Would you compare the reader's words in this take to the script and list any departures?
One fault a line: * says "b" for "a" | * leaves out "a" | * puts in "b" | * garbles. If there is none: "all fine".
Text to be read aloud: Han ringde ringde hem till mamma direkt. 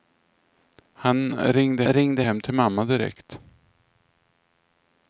all fine